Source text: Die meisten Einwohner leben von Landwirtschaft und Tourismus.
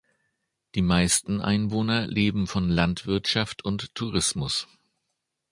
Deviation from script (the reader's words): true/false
false